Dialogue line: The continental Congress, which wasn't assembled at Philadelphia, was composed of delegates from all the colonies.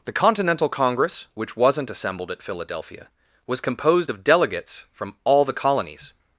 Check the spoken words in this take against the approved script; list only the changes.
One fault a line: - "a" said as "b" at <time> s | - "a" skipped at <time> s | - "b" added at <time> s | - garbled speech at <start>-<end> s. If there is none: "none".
none